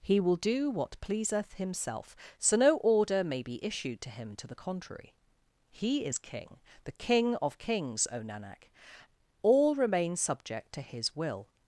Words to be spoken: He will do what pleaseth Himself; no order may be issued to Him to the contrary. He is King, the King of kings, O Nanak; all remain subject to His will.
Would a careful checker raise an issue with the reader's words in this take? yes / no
yes